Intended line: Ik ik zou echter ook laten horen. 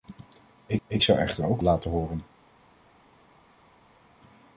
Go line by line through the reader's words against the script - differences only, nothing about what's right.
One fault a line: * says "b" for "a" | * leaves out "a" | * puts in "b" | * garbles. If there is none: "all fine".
all fine